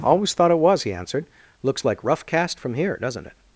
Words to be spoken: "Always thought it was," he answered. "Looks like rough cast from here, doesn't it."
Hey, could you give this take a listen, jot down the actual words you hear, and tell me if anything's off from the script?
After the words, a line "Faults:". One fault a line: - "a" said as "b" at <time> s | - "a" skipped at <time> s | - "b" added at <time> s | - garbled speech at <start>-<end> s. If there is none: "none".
"Always thought it was," he answered. "Looks like rough cast from here, doesn't it."
Faults:
none